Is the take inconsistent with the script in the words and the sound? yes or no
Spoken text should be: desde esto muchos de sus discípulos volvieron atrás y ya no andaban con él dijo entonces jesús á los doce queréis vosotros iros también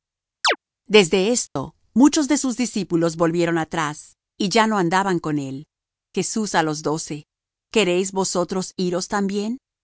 yes